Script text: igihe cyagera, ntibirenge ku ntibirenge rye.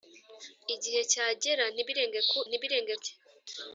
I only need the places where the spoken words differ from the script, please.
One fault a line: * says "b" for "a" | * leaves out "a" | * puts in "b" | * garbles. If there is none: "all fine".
all fine